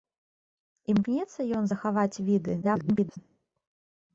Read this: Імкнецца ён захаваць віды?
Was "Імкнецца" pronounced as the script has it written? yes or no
yes